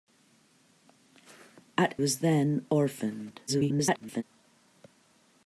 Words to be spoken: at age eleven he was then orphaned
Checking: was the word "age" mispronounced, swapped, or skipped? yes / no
yes